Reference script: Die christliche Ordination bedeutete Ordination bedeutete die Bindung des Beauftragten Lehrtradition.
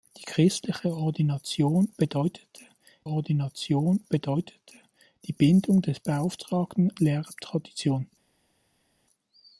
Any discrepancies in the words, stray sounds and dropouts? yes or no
no